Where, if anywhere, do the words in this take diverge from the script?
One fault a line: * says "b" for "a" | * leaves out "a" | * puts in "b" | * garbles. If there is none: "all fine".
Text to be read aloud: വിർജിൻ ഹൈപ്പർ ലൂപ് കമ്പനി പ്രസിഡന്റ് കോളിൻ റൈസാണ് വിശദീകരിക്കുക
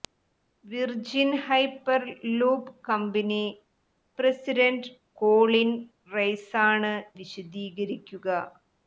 all fine